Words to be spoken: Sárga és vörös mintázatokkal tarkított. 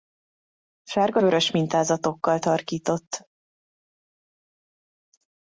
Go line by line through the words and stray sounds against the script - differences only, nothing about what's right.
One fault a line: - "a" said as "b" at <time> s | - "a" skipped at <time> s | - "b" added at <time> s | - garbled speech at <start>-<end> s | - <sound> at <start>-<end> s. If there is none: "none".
- "és" skipped at 1.2 s